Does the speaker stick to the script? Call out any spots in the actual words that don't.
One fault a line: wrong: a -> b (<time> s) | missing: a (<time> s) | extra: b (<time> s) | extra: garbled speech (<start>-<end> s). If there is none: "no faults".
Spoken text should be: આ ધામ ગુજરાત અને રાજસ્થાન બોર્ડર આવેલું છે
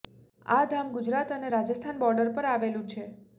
extra: પર (2.3 s)